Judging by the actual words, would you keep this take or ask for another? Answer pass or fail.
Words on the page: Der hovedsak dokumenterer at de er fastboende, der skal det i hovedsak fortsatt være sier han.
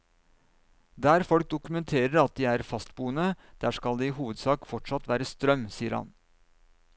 fail